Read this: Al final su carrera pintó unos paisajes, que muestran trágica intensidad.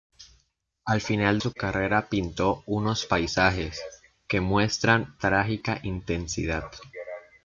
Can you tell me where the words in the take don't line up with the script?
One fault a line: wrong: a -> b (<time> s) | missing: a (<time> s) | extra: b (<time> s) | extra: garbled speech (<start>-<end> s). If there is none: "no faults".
no faults